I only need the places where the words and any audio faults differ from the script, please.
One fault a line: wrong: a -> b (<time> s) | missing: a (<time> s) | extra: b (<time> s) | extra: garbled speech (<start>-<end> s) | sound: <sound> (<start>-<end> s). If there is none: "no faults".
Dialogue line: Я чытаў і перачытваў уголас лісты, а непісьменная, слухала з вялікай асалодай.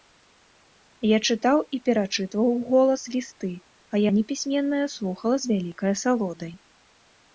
no faults